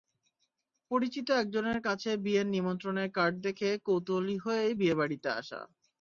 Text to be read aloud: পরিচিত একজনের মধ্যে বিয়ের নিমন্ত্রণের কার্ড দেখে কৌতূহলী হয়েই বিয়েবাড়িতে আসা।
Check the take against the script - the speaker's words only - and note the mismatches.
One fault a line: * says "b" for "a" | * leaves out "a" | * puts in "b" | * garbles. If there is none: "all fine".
* says "কাছে" for "মধ্যে"